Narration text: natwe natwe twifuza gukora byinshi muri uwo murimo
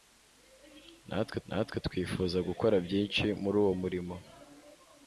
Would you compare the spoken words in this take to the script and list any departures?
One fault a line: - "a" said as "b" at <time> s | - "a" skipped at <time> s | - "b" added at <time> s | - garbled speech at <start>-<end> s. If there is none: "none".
none